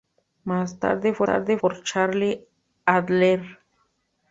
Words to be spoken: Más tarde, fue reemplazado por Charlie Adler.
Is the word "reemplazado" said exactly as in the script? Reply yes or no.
no